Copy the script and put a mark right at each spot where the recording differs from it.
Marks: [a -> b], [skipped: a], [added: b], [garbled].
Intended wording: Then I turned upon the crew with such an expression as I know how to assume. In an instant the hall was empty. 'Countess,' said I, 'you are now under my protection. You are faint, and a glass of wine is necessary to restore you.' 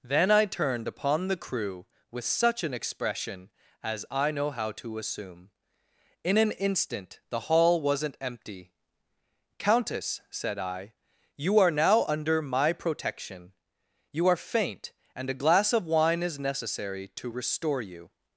Then I turned upon the crew with such an expression as I know how to assume. In an instant the hall [was -> wasn't] empty. 'Countess,' said I, 'you are now under my protection. You are faint, and a glass of wine is necessary to restore you.'